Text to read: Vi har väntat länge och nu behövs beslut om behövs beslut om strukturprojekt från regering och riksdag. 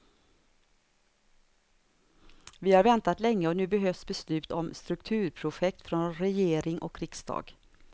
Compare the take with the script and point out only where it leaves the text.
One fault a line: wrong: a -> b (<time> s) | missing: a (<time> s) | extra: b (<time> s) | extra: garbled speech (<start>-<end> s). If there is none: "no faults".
missing: behövs beslut om (4.7 s)